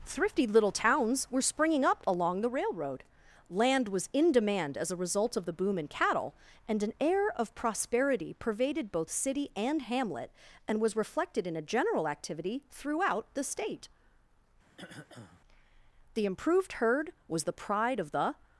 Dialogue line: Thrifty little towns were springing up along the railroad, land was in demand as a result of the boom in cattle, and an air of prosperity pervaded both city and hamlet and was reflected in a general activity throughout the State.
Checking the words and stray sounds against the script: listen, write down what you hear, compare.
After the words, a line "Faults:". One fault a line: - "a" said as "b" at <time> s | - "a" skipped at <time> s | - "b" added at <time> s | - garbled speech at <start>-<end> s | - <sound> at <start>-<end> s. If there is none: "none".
Thrifty little towns were springing up along the railroad, land was in demand as a result of the boom in cattle, and an air of prosperity pervaded both city and hamlet and was reflected in a general activity throughout the State. The improved herd was the pride of the
Faults:
- throat clearing at 14.7-15.4 s
- "The improved herd was the pride of the" added at 16.1 s